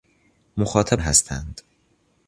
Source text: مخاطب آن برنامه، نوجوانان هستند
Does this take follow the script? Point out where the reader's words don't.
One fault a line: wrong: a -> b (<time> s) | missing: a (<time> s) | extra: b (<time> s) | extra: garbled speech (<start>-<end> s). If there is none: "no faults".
missing: آن برنامه نوجوانان (1.0 s)